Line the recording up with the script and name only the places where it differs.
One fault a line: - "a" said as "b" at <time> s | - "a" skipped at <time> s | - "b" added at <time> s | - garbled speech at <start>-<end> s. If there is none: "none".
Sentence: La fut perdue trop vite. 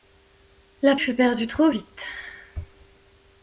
none